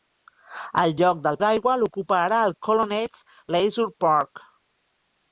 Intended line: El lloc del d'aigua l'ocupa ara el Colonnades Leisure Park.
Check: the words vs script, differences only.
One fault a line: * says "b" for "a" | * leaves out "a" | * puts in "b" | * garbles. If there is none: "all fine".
all fine